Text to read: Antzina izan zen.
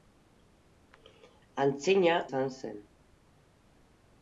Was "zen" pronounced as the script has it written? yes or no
yes